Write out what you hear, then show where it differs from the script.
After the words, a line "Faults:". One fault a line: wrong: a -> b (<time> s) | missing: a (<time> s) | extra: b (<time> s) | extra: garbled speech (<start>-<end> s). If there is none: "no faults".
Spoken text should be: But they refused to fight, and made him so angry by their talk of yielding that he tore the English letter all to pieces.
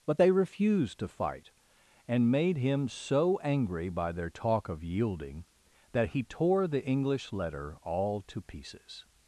But they refused to fight, and made him so angry by their talk of yielding that he tore the English letter all to pieces.
Faults:
no faults